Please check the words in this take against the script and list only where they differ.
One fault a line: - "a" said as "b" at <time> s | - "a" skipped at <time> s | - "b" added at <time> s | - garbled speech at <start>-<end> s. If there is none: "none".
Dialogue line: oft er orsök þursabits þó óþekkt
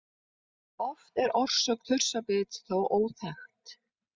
none